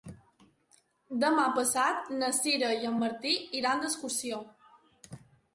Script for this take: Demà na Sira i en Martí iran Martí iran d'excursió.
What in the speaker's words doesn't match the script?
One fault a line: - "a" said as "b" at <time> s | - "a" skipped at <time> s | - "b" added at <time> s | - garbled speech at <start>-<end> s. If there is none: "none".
- "passat" added at 1.6 s
- "Martí iran" skipped at 3.8 s